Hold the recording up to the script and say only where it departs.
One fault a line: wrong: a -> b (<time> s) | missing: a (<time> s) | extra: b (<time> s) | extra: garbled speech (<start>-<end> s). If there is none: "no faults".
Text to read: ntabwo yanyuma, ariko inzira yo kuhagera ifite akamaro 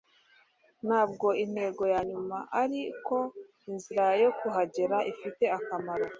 extra: intego (1.4 s)